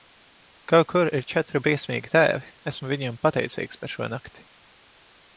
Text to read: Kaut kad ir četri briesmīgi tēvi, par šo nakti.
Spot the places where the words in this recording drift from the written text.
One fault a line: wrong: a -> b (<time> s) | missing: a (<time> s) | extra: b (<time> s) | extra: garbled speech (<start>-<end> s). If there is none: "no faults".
wrong: kad -> kur (0.9 s)
extra: esmu viņiem pateicīgs (2.7 s)